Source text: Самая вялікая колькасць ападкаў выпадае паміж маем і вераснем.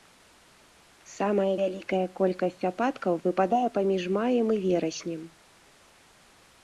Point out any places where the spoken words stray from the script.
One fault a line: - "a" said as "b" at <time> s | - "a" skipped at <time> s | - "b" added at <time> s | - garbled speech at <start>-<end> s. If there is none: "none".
none